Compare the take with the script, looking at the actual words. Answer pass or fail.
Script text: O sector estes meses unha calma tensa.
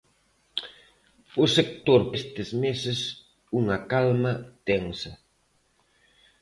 pass